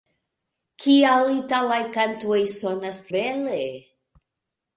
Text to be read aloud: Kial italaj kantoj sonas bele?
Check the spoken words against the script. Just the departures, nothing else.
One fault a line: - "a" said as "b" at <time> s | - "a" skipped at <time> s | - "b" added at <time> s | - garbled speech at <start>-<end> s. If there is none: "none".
none